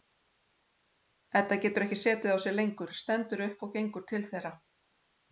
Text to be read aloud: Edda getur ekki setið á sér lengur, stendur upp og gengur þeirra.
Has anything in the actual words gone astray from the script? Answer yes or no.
yes